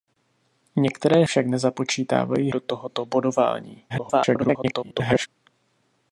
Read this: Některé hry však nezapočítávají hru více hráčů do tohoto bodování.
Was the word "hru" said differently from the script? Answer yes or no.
yes